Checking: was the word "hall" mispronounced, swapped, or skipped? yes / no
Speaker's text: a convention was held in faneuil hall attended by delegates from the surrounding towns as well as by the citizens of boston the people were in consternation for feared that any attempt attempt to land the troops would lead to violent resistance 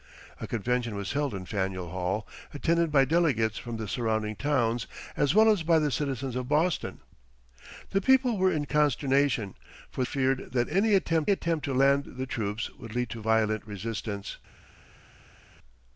no